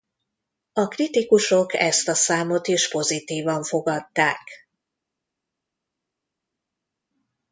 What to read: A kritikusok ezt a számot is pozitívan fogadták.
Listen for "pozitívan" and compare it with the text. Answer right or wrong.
right